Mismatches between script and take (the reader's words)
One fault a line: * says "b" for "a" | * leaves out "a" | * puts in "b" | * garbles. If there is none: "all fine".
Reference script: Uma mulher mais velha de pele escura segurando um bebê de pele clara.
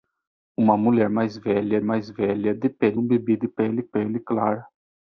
* puts in "mais velha"
* leaves out "escura segurando"
* puts in "pele"